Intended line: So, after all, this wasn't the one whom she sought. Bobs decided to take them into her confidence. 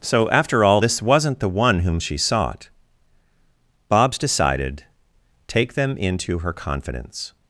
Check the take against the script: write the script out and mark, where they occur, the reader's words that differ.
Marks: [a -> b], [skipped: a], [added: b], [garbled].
So, after all, this wasn't the one whom she sought. Bobs decided [skipped: to] take them into her confidence.